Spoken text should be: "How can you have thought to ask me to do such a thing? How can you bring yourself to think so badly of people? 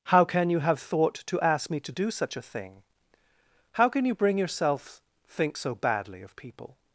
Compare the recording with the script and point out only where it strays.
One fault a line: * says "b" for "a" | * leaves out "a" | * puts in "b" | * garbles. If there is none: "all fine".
* leaves out "to"